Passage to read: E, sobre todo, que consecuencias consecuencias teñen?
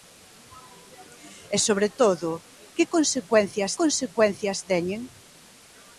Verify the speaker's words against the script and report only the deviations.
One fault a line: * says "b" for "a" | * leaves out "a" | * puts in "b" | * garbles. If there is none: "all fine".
all fine